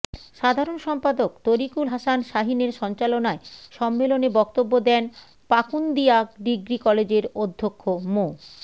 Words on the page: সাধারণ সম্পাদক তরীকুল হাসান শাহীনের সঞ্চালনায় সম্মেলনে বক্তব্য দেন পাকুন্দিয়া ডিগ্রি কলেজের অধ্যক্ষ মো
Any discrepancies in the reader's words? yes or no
no